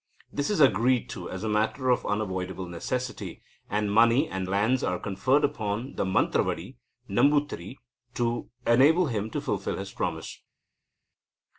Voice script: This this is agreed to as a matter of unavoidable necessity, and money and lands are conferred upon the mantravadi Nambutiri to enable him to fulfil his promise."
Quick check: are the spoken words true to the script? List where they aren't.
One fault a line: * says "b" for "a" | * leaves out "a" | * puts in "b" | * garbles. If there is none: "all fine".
* leaves out "this"